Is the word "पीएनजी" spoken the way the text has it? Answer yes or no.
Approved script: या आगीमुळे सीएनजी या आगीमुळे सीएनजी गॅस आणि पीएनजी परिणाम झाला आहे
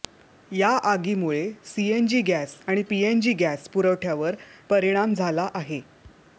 no